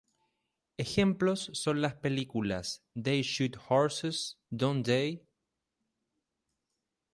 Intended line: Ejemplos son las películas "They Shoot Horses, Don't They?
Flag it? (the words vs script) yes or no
no